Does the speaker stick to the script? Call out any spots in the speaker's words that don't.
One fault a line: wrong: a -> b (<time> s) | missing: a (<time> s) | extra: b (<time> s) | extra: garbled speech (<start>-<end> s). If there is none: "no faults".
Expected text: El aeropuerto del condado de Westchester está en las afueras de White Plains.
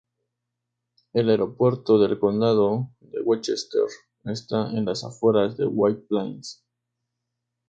no faults